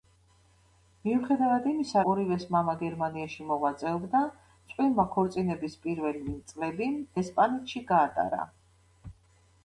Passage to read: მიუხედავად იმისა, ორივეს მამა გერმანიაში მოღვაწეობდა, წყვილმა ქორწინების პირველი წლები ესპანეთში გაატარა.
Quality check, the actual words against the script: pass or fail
pass